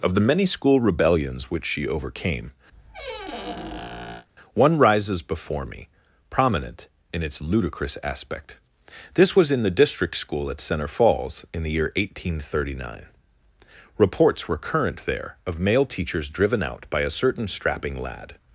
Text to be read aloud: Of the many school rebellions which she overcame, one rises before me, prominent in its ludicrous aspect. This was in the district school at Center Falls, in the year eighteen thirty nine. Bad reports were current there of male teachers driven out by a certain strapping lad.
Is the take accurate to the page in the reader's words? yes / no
no